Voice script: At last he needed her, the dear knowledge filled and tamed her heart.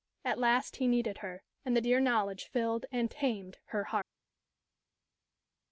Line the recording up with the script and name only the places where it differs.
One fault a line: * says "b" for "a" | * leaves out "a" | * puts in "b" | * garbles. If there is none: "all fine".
* puts in "and"